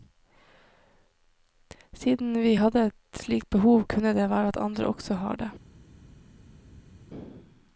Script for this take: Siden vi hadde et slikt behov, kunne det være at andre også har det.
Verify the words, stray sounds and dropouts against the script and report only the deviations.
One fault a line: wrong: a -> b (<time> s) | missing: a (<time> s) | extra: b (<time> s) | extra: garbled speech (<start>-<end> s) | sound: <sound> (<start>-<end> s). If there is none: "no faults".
no faults